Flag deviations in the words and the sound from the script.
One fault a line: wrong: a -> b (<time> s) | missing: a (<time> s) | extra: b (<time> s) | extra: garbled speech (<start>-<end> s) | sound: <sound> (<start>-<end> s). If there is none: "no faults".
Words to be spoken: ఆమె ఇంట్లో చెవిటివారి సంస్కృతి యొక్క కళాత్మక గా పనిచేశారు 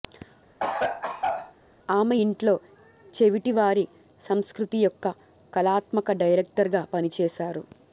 sound: cough (0.6-1.5 s)
extra: డైరెక్టర్ (6.2 s)